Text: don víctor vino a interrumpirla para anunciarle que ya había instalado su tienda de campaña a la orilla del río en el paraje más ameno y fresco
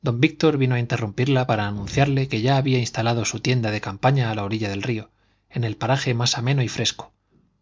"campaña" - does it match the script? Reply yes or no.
yes